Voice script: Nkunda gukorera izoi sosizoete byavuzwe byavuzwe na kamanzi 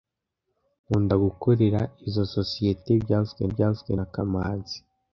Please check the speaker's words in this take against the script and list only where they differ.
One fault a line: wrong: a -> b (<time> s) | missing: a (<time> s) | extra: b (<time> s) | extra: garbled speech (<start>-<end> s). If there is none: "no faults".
no faults